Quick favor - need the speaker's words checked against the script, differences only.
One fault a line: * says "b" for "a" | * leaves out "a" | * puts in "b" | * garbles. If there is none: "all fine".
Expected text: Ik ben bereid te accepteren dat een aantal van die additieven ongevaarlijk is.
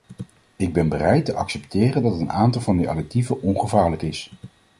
all fine